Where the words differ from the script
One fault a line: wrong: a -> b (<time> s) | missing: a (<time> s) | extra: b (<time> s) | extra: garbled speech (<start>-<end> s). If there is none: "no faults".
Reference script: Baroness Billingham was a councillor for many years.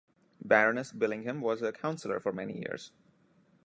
no faults